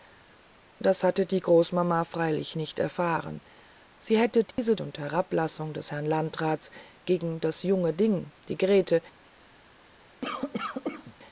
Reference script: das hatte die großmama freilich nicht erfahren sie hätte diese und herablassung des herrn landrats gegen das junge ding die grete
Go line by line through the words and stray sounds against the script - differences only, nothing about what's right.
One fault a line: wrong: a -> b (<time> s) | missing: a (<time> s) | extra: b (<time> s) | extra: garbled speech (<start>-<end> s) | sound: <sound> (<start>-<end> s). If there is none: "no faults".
sound: dropout (4.5-4.6 s)
sound: cough (10.2-11.1 s)